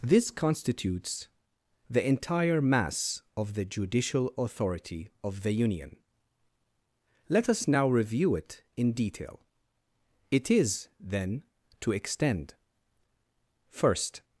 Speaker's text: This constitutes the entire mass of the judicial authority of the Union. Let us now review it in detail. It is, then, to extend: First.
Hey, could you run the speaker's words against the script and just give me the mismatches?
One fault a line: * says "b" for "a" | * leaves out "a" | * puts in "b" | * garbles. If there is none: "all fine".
all fine